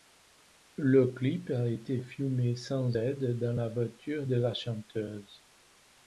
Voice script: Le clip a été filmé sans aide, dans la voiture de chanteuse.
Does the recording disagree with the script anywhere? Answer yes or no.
yes